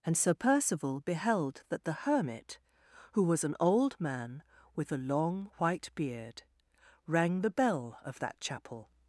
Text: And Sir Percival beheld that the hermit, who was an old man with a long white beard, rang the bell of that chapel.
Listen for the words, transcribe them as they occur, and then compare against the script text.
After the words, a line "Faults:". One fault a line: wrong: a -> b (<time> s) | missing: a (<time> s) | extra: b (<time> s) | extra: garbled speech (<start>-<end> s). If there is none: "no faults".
And Sir Percival beheld that the hermit, who was an old man with a long white beard, rang the bell of that chapel.
Faults:
no faults